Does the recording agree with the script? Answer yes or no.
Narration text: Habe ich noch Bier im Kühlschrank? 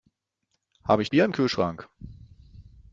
no